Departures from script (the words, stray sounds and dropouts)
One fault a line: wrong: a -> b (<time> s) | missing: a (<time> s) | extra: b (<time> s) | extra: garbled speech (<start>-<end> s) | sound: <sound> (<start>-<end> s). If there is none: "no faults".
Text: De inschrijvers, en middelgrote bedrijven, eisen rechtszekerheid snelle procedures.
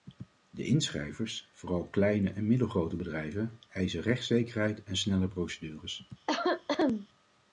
extra: vooral kleine (1.5 s)
extra: en (4.8 s)
sound: cough (6.3-7.1 s)